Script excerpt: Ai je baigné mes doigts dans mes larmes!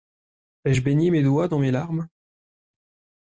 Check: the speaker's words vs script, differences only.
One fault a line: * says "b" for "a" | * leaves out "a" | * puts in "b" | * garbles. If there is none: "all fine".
all fine